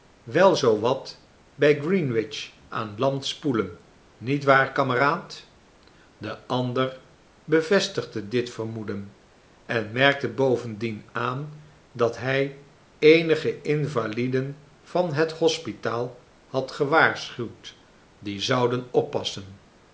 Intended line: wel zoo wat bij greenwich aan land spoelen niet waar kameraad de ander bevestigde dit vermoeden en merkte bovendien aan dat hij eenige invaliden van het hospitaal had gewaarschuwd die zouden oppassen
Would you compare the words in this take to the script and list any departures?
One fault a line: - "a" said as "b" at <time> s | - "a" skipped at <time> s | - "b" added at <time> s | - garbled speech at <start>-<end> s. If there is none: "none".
none